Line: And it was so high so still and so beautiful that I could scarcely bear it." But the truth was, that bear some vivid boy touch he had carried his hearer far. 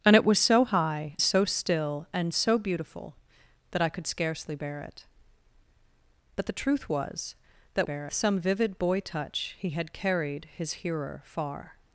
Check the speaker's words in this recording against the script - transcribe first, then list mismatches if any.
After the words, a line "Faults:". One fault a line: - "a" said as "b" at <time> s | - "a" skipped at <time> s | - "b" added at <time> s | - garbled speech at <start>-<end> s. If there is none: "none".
And it was so high so still and so beautiful that I could scarcely bear it." But the truth was, that bear some vivid boy touch he had carried his hearer far.
Faults:
none